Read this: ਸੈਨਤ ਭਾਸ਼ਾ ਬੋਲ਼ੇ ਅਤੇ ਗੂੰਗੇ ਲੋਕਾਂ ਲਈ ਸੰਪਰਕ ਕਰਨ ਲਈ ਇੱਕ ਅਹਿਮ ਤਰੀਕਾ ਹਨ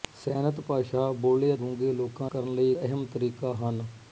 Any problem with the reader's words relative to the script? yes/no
yes